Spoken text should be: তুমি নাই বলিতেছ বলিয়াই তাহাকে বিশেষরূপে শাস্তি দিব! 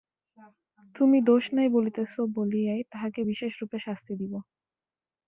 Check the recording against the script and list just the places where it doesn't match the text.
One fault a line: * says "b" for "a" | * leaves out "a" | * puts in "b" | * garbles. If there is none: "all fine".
* puts in "দোষ"